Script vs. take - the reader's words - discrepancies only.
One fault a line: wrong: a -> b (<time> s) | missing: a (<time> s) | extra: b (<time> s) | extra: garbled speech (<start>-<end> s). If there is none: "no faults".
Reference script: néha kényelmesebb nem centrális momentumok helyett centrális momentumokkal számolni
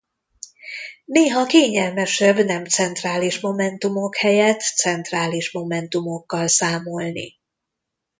no faults